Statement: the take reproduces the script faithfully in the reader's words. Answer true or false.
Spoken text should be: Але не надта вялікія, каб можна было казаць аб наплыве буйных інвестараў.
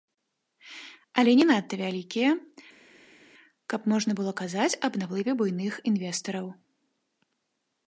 true